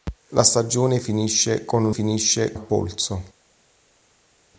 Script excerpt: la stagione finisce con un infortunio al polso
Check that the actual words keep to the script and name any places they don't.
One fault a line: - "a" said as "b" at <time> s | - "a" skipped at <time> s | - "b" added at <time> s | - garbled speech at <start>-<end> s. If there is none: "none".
- "infortunio" said as "finisce" at 1.9 s